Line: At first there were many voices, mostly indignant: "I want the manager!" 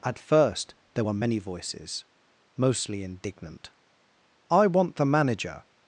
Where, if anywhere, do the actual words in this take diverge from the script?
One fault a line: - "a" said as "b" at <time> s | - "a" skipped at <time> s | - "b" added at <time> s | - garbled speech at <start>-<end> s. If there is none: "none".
none